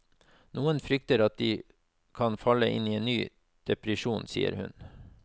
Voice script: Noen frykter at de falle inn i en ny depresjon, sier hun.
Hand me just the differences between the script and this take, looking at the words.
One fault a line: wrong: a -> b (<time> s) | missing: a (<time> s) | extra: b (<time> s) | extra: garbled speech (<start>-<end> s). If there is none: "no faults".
extra: kan (2.2 s)